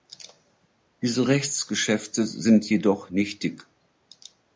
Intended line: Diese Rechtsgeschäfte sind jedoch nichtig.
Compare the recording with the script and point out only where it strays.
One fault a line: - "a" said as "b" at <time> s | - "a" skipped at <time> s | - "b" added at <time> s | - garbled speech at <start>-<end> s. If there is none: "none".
none